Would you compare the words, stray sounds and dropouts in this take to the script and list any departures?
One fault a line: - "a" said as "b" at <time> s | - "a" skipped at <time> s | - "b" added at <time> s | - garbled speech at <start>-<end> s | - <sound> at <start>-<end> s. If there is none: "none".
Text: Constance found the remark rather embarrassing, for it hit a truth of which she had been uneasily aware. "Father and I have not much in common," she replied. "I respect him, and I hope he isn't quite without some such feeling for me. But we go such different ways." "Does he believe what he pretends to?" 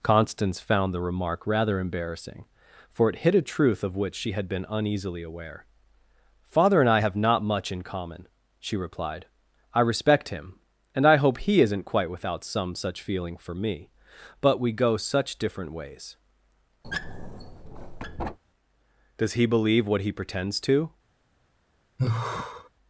- squeak at 16.8-18.4 s
- sigh at 22.0-22.7 s